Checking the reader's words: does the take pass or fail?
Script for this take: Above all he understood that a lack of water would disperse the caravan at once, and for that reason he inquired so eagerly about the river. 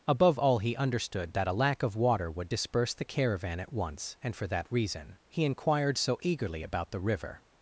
pass